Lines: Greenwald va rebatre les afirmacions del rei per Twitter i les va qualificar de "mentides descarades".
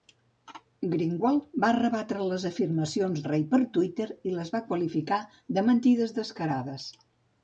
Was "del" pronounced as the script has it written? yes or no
no